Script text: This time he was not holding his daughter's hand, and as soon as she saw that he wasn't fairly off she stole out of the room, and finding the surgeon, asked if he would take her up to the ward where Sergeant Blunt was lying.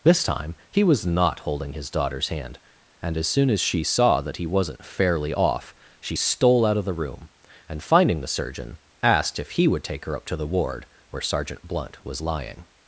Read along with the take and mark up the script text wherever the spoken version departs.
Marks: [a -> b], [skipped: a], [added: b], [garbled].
This time he was not holding his daughter's hand, and as soon as she saw that he wasn't fairly off she stole out of the room, and finding the surgeon, asked if he would take her up to the ward where Sergeant Blunt was lying.